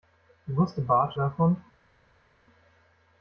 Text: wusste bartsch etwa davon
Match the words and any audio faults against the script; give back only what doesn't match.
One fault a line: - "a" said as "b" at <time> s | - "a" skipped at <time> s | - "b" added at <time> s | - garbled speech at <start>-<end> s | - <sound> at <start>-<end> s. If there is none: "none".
- "etwa" skipped at 1.2 s